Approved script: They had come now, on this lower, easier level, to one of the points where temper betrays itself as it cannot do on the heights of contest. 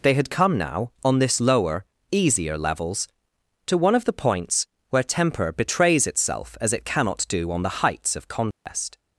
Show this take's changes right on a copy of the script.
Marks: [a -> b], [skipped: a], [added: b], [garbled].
They had come now, on this lower, easier [level, -> levels] to one of the points where temper betrays itself as it cannot do on the heights of contest.